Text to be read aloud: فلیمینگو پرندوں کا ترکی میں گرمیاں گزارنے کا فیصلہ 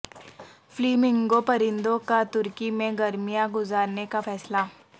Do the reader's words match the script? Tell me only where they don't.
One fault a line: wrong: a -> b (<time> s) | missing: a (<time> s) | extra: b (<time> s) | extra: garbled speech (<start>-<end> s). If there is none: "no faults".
no faults